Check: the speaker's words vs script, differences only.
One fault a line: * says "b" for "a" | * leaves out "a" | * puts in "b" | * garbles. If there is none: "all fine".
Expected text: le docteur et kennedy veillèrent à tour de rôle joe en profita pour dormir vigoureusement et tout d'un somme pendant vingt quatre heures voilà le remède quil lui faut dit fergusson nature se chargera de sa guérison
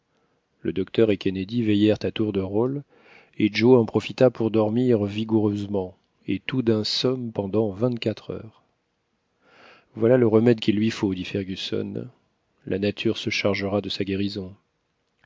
* puts in "et"
* puts in "la"